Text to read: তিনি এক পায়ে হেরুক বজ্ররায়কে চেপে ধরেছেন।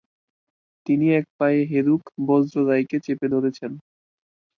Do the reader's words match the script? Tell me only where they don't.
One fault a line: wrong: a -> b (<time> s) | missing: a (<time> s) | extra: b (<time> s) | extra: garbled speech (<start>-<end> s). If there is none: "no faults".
no faults